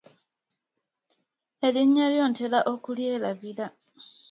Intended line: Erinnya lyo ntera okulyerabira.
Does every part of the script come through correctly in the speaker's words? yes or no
yes